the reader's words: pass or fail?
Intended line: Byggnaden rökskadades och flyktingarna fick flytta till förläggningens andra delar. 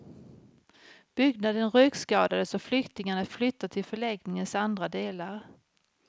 fail